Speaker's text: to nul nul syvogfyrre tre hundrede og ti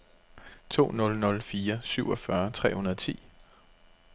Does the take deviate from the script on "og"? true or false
false